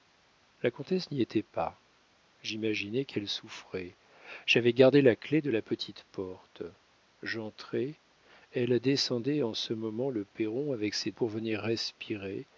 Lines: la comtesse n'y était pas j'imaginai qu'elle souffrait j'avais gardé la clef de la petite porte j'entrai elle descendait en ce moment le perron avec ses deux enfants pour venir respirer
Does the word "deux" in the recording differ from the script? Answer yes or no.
yes